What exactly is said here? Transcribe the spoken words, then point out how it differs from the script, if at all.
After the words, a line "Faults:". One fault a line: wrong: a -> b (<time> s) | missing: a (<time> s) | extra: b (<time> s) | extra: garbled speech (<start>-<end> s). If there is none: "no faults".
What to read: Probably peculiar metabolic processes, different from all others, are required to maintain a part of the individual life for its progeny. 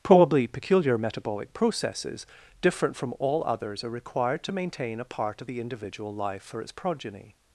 Probably peculiar metabolic processes, different from all others, are required to maintain a part of the individual life for its progeny.
Faults:
no faults